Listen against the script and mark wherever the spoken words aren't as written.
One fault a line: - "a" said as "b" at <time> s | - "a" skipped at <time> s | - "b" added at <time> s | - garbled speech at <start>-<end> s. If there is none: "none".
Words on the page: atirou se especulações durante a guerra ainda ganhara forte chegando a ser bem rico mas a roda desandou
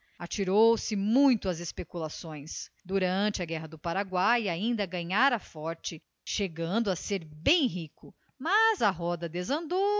- "muito às" added at 0.9 s
- "do paraguai" added at 3.7 s